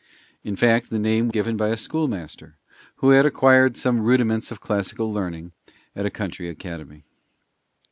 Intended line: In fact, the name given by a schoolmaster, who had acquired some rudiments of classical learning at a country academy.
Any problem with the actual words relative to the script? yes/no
no